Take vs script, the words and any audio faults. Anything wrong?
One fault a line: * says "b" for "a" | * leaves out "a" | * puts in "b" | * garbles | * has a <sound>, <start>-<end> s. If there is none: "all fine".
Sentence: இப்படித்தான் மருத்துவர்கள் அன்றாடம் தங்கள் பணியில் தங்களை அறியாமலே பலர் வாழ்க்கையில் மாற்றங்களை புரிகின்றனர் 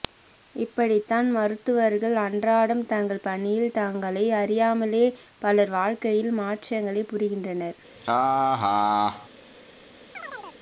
* has a laugh, 8.0-9.3 s
* has a chirp, 10.1-10.6 s